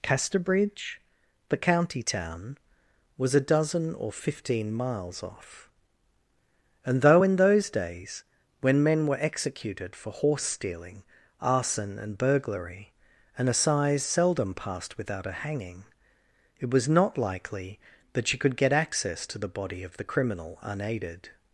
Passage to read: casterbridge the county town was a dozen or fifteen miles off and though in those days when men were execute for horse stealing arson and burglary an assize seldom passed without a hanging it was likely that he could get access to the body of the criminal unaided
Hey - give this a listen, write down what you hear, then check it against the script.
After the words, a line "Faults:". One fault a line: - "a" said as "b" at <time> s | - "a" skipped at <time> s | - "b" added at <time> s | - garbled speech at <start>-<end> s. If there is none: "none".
casterbridge the county town was a dozen or fifteen miles off and though in those days when men were executed for horse stealing arson and burglary an assize seldom passed without a hanging it was not likely that she could get access to the body of the criminal unaided
Faults:
- "execute" said as "executed" at 9.2 s
- "not" added at 16.9 s
- "he" said as "she" at 18.3 s